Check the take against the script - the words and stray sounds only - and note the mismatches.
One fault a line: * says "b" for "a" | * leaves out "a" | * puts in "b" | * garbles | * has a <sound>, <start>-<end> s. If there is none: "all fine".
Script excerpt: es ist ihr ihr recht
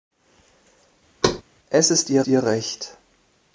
* has a thud, 1.2-1.4 s